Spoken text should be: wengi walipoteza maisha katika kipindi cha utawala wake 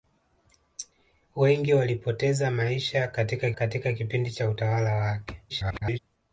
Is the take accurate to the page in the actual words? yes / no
no